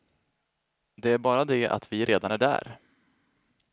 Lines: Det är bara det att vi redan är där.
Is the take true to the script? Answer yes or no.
yes